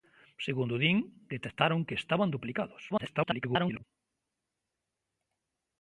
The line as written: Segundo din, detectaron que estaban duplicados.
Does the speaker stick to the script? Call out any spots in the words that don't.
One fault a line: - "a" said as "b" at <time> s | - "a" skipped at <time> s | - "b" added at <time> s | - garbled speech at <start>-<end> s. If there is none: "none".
- garbled speech at 2.9-3.8 s